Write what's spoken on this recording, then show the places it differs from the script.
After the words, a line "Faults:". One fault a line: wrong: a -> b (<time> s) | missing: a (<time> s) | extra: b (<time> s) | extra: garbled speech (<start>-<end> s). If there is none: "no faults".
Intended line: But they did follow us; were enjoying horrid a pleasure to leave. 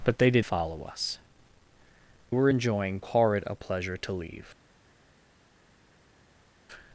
But they did follow us; were enjoying horrid a pleasure to leave.
Faults:
no faults